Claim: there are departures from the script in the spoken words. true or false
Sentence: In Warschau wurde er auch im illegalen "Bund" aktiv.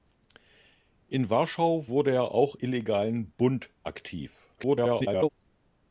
true